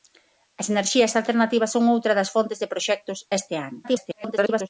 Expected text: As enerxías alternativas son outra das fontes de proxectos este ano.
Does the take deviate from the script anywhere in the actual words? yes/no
yes